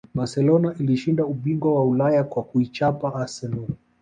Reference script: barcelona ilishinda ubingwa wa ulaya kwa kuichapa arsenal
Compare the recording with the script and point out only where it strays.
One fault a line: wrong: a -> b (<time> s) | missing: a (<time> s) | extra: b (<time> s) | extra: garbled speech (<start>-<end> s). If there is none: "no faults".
no faults